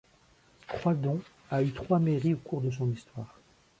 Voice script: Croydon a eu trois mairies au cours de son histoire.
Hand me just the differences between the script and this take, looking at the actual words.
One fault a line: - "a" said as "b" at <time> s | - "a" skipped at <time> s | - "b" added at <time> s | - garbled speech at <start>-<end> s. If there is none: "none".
none